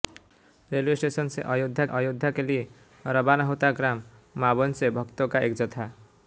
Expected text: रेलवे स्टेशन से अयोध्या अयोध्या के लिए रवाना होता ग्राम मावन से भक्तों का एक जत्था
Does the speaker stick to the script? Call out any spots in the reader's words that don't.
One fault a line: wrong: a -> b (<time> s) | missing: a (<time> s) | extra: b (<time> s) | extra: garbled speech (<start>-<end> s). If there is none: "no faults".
no faults